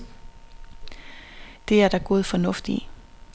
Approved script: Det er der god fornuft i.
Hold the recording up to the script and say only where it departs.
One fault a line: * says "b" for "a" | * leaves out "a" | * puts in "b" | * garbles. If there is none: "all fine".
all fine